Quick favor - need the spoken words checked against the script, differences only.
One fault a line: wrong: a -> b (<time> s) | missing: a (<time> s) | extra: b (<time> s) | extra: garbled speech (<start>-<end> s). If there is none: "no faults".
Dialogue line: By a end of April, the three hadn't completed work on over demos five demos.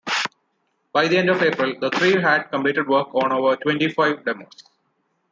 wrong: a -> the (1.1 s)
wrong: hadn't -> had (2.2 s)
wrong: demos -> twenty (3.5 s)